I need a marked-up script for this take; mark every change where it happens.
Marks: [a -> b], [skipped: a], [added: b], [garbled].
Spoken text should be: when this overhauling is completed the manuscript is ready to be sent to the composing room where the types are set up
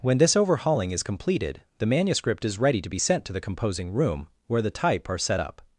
when this overhauling is completed the manuscript is ready to be sent to the composing room where the [types -> type] are set up